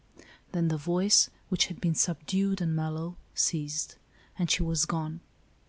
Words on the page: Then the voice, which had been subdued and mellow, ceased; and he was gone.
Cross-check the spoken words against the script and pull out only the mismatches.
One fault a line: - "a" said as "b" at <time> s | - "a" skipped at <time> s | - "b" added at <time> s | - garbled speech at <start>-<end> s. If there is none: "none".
- "he" said as "she" at 4.5 s